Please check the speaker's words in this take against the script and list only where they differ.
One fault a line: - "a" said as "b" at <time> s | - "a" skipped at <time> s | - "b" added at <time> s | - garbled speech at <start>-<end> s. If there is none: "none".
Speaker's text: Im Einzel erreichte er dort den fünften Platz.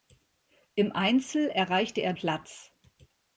- "dort den fünften" skipped at 2.1 s